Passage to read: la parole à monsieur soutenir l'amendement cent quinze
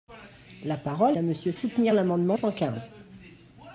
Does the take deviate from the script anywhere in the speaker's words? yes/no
no